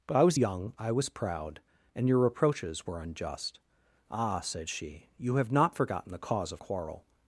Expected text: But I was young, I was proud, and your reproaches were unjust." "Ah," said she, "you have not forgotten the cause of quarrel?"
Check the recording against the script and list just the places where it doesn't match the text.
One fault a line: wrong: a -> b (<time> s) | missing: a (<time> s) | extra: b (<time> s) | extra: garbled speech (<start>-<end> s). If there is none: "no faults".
no faults